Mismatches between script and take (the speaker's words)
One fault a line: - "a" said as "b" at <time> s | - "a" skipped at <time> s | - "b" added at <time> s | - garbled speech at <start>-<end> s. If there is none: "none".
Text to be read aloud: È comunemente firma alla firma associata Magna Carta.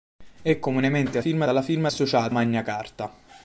none